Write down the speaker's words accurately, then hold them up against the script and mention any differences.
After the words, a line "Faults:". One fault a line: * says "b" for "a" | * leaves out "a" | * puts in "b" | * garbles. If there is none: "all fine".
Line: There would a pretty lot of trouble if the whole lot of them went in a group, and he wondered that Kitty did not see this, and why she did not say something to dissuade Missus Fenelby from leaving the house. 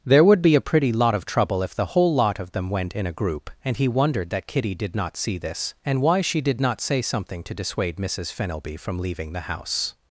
There would be a pretty lot of trouble if the whole lot of them went in a group, and he wondered that Kitty did not see this, and why she did not say something to dissuade Missus Fenelby from leaving the house.
Faults:
* puts in "be"